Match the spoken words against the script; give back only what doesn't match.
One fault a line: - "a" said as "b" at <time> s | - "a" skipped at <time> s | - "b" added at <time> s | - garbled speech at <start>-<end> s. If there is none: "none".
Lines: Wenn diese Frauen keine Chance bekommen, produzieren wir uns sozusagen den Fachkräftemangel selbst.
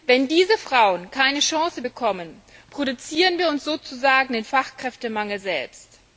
none